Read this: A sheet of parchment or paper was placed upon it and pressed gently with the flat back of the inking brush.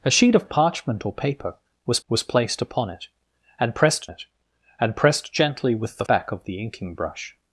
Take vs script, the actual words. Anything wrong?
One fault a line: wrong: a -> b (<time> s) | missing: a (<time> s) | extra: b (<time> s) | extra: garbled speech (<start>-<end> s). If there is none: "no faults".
extra: was (2.1 s)
extra: it and pressed (4.1 s)
missing: flat (6.1 s)